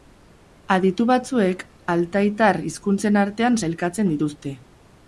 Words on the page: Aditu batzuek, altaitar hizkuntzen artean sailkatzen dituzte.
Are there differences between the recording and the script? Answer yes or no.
no